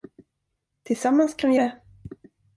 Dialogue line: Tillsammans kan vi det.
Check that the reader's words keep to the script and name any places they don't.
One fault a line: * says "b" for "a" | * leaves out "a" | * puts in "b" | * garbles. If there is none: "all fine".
all fine